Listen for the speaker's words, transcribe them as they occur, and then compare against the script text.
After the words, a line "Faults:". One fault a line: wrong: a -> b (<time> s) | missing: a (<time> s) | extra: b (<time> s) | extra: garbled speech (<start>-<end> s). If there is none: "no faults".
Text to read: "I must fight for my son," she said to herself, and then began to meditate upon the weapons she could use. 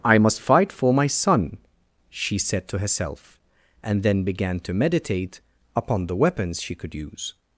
"I must fight for my son," she said to herself, and then began to meditate upon the weapons she could use.
Faults:
no faults